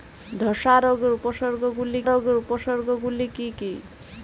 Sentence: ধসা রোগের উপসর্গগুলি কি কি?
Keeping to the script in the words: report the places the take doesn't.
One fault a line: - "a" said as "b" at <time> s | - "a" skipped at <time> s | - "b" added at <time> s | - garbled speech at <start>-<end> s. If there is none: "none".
- "রোগের উপসর্গগুলি" added at 2.0 s